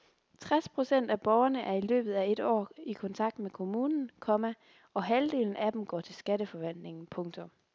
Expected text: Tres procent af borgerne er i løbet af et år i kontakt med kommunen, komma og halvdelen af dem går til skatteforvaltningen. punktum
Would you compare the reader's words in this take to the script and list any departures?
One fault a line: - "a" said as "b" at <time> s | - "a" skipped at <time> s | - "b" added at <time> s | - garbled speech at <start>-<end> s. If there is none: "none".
none